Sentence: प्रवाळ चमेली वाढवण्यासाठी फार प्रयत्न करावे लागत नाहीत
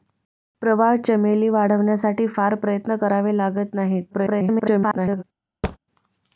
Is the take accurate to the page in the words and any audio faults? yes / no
no